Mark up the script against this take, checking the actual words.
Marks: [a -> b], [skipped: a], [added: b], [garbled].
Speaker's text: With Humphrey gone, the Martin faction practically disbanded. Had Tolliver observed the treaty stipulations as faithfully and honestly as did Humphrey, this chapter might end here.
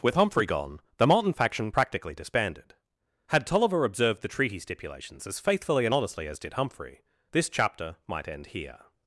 With Humphrey gone, the Martin faction practically disbanded. Had Tolliver observed the treaty stipulations as faithfully and honestly as did Humphrey, this chapter might end here.